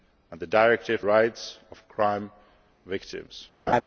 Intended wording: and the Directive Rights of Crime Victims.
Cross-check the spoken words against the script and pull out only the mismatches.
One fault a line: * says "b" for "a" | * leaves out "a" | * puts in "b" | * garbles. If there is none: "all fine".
all fine